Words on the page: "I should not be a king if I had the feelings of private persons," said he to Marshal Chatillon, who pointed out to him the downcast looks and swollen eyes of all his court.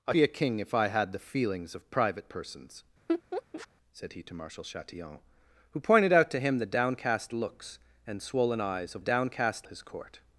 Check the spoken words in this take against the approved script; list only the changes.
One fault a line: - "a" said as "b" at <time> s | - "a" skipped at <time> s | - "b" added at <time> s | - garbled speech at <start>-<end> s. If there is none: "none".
- "should not" skipped at 0.1 s
- "all" said as "downcast" at 9.0 s